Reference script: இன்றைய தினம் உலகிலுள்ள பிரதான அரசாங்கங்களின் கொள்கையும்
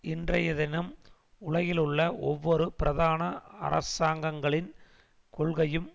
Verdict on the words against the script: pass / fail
fail